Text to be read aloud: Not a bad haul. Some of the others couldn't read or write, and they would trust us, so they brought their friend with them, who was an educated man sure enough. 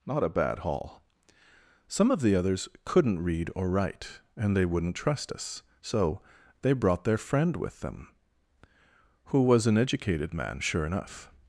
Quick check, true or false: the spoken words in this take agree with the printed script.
false